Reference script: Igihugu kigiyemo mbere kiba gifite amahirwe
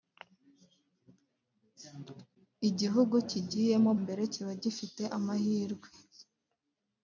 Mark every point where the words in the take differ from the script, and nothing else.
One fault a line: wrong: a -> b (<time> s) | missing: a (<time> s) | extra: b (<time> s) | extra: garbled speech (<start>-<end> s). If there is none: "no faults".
no faults